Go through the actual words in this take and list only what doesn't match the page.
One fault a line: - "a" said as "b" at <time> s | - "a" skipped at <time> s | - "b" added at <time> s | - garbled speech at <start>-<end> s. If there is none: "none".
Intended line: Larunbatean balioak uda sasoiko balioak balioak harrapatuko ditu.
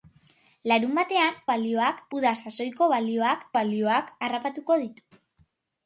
none